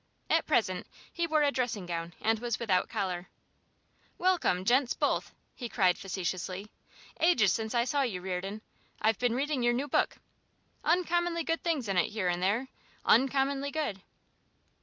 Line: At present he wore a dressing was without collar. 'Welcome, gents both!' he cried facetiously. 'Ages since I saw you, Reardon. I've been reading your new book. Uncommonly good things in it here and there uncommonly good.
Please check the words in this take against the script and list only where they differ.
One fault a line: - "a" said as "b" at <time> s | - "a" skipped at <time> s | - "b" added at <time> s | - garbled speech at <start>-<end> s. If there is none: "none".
- "gown and" added at 1.9 s